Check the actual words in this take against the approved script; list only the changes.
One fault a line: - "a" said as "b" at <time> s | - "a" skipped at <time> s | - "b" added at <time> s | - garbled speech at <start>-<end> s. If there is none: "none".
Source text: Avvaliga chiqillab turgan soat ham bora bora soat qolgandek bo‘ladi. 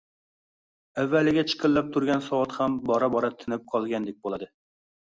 - "soat" said as "tinib" at 3.5 s